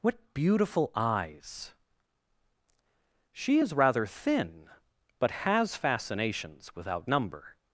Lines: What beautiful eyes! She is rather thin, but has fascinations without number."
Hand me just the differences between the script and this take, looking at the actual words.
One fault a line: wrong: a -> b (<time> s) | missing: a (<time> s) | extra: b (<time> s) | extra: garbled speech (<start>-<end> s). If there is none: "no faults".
no faults